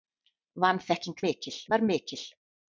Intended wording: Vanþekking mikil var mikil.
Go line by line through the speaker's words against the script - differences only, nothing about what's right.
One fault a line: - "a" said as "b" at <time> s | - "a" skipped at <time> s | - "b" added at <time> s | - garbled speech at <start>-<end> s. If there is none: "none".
none